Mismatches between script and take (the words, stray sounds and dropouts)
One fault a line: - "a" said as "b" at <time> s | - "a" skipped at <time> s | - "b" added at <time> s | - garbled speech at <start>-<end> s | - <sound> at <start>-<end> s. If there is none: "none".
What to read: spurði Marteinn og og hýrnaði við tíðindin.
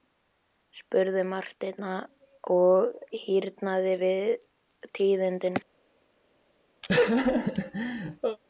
- "og" skipped at 2.9 s
- laugh at 6.8-8.4 s